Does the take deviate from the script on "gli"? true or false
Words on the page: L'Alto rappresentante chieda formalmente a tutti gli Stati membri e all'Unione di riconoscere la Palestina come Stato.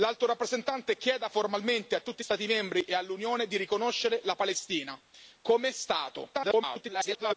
true